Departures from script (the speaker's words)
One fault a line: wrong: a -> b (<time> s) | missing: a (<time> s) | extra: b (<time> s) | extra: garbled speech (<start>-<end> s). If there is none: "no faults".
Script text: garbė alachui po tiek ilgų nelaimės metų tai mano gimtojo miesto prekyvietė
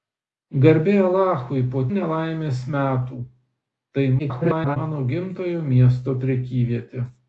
missing: tiek ilgų (1.8 s)
extra: garbled speech (4.2-4.8 s)